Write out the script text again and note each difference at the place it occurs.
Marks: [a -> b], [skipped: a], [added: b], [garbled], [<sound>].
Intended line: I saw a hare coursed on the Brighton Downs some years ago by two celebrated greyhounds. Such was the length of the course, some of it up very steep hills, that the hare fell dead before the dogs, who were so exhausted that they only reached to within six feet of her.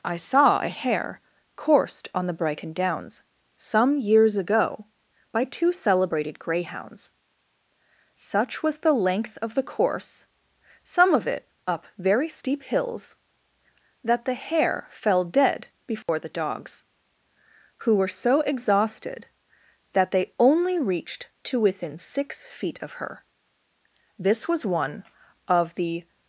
I saw a hare coursed on the Brighton Downs some years ago by two celebrated greyhounds. Such was the length of the course, some of it up very steep hills, that the hare fell dead before [dropout] the dogs, who were so exhausted that they only reached to within six feet of her. [added: This was one of the]